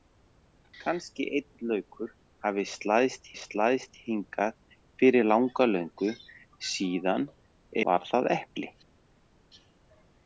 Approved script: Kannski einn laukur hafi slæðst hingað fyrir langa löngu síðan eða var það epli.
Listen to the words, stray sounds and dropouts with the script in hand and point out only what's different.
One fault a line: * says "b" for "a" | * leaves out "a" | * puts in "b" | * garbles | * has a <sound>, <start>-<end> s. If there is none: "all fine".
* puts in "slæðst"
* leaves out "eða"